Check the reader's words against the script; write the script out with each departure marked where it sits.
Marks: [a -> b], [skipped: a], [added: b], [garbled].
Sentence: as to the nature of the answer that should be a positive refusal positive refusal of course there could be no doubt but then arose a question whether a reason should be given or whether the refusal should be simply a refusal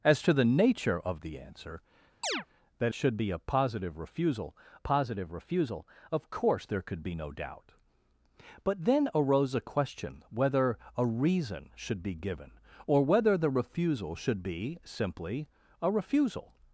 as to the nature of the answer that should be a positive refusal positive refusal of course there could be no doubt but then arose a question whether a reason should be given or whether the refusal should be simply a refusal